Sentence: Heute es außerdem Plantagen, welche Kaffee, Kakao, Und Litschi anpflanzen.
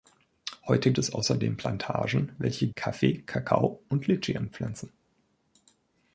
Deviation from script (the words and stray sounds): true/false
false